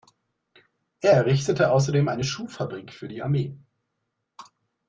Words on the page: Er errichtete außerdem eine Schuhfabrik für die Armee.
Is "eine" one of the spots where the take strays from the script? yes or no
no